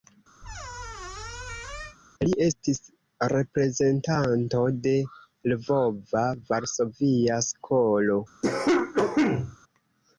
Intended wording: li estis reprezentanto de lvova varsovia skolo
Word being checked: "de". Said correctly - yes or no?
yes